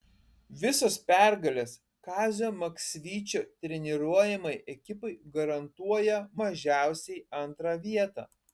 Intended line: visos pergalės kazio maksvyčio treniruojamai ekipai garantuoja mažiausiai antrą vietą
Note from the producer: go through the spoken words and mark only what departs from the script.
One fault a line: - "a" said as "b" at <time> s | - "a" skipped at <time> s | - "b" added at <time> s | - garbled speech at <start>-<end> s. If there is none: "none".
none